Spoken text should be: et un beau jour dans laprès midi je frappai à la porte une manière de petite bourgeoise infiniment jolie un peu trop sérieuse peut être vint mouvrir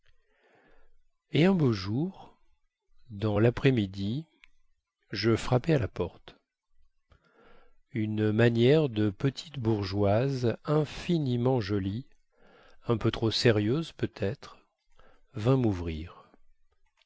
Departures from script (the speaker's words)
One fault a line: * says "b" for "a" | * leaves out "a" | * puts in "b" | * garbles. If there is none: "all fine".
all fine